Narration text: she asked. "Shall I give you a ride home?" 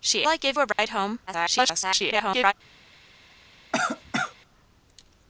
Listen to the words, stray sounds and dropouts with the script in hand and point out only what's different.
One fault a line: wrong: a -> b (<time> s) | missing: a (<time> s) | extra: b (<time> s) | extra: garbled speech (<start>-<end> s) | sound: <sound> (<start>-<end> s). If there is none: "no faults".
missing: asked Shall (0.2 s)
missing: you (0.6 s)
sound: dropout (0.7-0.8 s)
extra: garbled speech (1.3-2.5 s)
sound: cough (3.7-4.4 s)